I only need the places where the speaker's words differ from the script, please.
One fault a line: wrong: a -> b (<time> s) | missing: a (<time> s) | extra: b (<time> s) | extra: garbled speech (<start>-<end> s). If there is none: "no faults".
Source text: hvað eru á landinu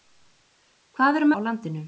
no faults